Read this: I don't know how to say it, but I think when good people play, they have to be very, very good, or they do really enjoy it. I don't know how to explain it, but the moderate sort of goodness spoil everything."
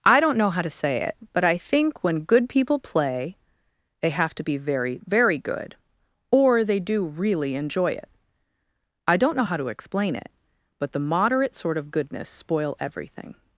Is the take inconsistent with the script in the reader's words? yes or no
no